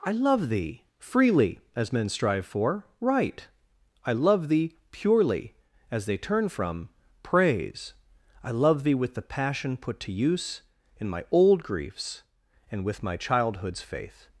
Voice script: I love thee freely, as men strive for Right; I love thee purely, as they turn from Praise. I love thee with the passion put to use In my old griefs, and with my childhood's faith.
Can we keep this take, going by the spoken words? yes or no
yes